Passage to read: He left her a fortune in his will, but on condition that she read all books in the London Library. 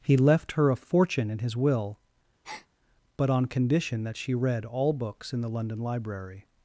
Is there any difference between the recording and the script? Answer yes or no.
no